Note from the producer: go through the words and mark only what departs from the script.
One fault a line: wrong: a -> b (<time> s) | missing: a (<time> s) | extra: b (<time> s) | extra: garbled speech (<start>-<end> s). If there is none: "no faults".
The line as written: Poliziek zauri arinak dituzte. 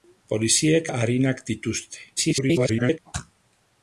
missing: zauri (0.9 s)
extra: garbled speech (2.2-3.0 s)